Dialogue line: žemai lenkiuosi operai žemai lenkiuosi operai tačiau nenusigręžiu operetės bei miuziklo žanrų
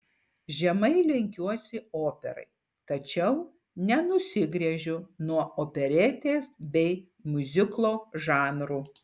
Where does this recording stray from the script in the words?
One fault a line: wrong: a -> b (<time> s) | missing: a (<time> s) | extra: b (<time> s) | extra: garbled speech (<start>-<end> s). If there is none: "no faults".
missing: žemai lenkiuosi operai (2.5 s)
extra: nuo (5.3 s)